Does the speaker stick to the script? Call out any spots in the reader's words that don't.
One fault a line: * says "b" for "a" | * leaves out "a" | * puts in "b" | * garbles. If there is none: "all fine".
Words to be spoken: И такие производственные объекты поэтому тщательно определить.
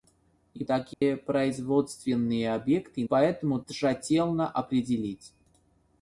all fine